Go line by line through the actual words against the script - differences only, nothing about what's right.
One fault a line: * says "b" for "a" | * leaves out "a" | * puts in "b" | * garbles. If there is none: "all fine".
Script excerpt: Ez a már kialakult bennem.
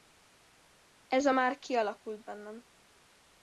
all fine